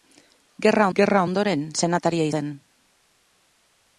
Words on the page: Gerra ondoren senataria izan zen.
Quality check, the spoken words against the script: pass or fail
fail